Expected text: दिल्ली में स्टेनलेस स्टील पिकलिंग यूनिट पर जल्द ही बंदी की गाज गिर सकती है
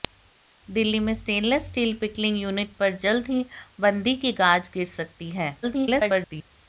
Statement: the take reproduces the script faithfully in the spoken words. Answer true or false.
false